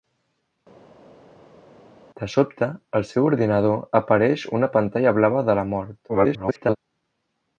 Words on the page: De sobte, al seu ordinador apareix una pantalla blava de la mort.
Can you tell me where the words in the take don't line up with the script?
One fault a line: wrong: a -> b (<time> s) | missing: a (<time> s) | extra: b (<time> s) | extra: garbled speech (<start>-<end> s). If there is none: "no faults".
extra: garbled speech (6.1-6.8 s)